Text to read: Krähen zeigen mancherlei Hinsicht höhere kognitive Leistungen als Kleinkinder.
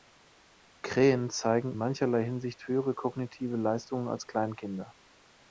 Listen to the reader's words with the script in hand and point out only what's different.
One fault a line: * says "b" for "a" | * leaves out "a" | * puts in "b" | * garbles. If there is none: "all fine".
all fine